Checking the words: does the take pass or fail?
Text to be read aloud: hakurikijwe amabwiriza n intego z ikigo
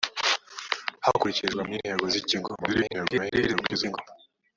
fail